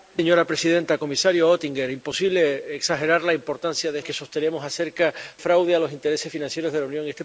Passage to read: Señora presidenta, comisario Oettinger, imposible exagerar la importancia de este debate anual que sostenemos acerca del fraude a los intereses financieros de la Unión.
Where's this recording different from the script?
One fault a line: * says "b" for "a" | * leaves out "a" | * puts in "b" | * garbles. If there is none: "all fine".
* leaves out "este debate anual"
* leaves out "del"